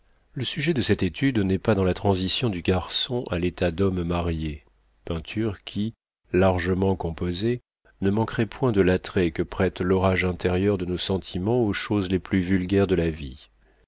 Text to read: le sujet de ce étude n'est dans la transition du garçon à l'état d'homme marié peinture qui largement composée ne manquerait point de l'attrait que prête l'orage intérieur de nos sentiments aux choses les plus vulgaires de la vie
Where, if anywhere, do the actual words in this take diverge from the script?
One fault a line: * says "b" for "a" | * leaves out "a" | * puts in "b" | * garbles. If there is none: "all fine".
* says "cette" for "ce"
* puts in "pas"